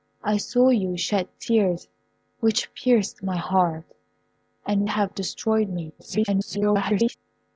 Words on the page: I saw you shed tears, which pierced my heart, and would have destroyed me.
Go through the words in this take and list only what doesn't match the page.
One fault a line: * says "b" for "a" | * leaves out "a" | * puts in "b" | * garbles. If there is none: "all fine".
* leaves out "would"
* garbles